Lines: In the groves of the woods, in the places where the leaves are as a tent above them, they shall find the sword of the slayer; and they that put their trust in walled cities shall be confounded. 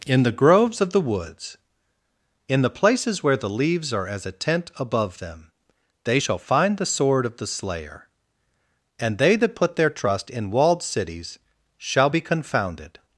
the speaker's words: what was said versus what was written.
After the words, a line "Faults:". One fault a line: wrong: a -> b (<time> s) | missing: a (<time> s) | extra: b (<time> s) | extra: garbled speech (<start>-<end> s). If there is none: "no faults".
In the groves of the woods, in the places where the leaves are as a tent above them, they shall find the sword of the slayer; and they that put their trust in walled cities shall be confounded.
Faults:
no faults